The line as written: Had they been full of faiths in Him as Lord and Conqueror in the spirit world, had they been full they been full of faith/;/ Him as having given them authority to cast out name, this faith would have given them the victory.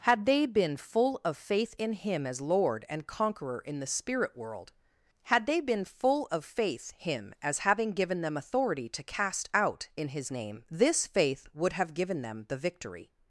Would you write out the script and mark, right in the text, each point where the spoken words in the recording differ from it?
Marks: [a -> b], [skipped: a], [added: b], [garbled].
Had they been full of [faiths -> faith] in Him as Lord and Conqueror in the spirit world, had they been full [skipped: they been full] of faith/;/ Him as having given them authority to cast out [added: in His] name, this faith would have given them the victory.